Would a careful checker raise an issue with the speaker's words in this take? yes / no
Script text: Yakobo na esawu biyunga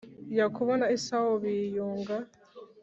no